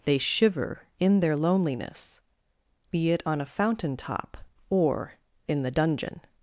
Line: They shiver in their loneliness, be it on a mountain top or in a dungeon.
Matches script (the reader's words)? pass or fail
fail